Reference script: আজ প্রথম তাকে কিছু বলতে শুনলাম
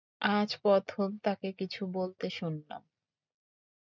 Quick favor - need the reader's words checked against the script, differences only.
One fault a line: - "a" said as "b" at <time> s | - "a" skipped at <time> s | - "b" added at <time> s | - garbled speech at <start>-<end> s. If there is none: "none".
none